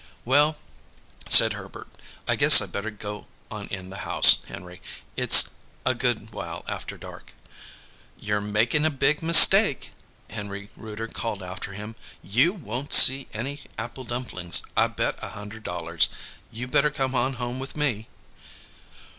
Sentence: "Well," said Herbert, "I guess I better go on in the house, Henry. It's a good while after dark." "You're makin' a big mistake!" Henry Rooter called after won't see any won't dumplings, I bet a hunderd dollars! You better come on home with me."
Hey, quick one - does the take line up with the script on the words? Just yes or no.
no